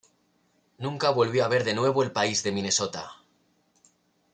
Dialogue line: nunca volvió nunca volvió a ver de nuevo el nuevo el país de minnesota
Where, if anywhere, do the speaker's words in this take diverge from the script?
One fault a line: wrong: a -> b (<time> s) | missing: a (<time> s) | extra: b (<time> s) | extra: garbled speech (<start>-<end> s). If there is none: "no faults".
missing: nunca volvió (1.4 s)
missing: nuevo el (2.1 s)